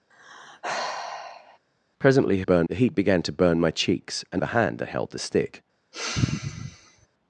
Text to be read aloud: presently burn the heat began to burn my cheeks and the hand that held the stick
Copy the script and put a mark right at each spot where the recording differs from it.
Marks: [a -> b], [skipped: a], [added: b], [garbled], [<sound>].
[sigh] presently burn the heat began to burn my cheeks and the hand that held the stick [sigh]